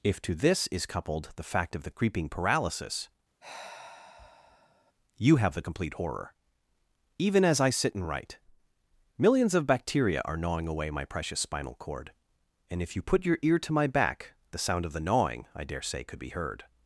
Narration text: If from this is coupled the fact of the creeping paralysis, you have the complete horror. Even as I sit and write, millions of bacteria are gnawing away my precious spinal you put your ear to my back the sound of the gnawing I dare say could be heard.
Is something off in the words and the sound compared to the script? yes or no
yes